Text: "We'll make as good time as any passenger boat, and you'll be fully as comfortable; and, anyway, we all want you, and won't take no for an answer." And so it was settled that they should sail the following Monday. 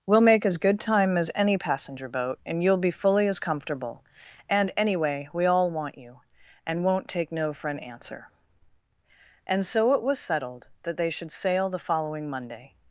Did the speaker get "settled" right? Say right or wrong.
right